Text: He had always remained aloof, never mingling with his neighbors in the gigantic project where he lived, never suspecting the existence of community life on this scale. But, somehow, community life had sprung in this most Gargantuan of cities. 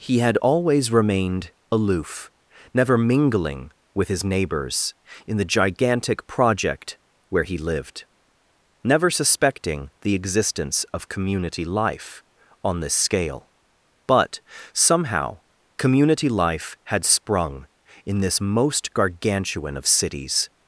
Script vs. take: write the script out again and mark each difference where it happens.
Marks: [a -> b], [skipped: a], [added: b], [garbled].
He had always remained aloof, never mingling with his neighbors in the gigantic project where he lived, never suspecting the existence of community life on this scale. But, somehow, community life had sprung in this most Gargantuan of cities.